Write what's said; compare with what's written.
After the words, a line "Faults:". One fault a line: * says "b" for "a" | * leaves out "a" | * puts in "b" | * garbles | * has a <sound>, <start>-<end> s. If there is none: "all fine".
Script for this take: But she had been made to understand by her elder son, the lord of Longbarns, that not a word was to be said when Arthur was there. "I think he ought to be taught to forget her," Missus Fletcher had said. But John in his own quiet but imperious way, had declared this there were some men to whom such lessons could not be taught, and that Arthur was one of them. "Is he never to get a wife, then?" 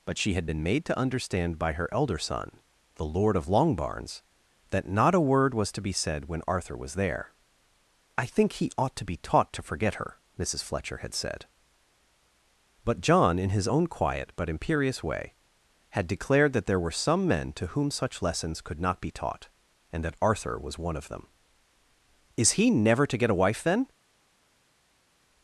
But she had been made to understand by her elder son, the lord of Longbarns, that not a word was to be said when Arthur was there. "I think he ought to be taught to forget her," Missus Fletcher had said. But John in his own quiet but imperious way, had declared that there were some men to whom such lessons could not be taught, and that Arthur was one of them. "Is he never to get a wife, then?"
Faults:
* says "that" for "this"